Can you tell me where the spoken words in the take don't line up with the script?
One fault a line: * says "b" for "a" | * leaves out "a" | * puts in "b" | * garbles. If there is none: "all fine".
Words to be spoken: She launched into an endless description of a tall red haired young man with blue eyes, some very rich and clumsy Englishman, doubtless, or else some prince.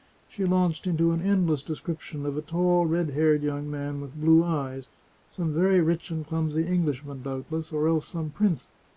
all fine